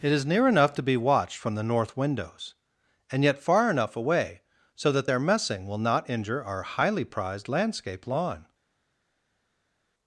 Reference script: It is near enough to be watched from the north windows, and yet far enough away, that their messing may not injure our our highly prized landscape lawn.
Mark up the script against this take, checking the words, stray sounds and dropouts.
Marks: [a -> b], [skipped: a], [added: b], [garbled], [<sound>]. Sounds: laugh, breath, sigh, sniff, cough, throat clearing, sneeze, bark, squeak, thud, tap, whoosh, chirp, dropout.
It is near enough to be watched from the north windows, and yet far enough away, [added: so] that their messing [may -> will] not injure our [skipped: our] highly prized landscape lawn.